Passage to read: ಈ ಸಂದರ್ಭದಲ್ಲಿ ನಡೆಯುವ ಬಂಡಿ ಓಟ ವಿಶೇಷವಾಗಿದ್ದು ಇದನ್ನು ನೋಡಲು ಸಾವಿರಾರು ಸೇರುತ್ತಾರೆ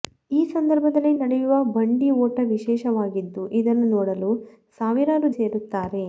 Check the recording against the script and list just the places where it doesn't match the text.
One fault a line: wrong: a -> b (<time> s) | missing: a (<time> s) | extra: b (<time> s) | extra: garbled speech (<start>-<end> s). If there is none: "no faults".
no faults